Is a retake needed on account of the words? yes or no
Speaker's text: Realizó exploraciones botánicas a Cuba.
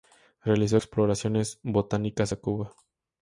no